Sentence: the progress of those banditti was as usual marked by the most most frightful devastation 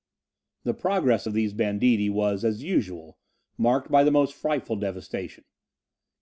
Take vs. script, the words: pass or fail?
fail